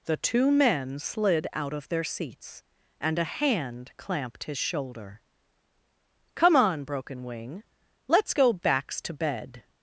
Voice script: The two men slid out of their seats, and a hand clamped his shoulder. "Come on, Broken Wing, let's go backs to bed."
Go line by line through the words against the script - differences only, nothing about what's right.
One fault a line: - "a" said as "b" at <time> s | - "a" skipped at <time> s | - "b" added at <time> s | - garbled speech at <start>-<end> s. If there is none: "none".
none